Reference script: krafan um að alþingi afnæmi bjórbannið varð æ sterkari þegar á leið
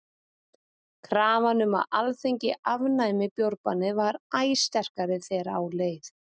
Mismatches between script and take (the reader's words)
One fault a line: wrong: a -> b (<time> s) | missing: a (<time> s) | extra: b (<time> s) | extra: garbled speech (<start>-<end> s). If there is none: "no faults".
no faults